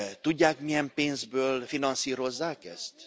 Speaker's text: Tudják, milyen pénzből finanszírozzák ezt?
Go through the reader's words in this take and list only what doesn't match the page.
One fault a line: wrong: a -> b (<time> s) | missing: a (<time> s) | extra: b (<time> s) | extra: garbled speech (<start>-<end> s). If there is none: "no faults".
no faults